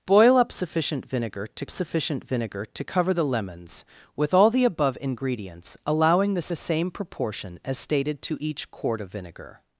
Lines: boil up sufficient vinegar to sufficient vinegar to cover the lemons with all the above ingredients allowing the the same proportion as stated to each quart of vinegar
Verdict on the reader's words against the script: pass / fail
pass